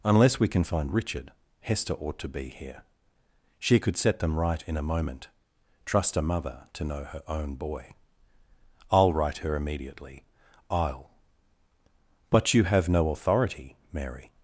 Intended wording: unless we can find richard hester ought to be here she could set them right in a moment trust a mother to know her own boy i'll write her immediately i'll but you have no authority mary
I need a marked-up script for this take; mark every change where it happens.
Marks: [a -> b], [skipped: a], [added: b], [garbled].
unless we can find richard hester ought to be here she could set them right in a moment trust a mother to know her own boy i'll write her immediately i'll but you have no authority mary